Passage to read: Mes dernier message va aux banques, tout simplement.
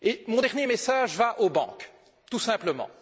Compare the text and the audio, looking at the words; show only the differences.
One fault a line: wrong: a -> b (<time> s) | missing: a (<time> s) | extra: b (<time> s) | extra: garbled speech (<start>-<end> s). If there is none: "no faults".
wrong: Mes -> Mon (0.3 s)